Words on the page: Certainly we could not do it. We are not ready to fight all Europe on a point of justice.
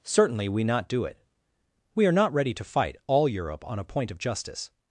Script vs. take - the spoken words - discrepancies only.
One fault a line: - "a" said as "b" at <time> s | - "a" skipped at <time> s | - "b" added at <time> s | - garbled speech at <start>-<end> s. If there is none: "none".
- "could" skipped at 0.6 s